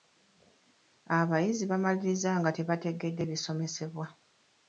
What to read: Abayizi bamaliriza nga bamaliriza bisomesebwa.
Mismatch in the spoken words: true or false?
true